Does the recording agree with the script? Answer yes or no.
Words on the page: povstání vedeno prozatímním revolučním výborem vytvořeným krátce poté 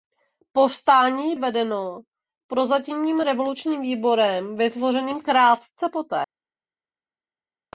yes